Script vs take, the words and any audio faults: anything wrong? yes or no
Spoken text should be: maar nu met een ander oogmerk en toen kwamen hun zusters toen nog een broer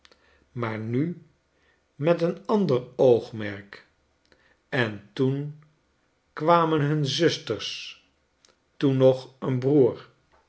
no